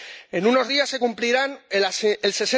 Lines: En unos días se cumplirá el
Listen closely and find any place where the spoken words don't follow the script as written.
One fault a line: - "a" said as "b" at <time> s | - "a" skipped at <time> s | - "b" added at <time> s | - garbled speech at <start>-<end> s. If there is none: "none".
none